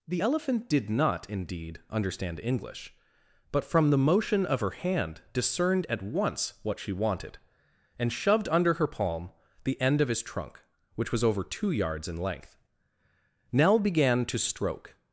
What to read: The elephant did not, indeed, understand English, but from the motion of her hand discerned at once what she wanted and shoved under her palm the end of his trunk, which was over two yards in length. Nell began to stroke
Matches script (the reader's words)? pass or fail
pass